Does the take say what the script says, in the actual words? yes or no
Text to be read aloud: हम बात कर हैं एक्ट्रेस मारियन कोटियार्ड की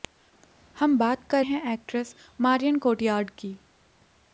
yes